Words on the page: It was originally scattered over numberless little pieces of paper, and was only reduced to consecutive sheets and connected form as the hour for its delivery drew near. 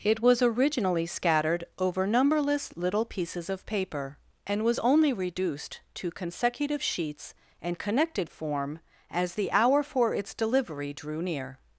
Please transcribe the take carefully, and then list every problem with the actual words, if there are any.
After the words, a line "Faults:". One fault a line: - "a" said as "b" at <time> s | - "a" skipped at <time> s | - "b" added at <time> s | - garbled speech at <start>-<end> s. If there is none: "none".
It was originally scattered over numberless little pieces of paper, and was only reduced to consecutive sheets and connected form as the hour for its delivery drew near.
Faults:
none